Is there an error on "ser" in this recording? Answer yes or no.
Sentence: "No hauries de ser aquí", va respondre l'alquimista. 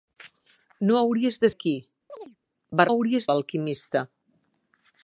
yes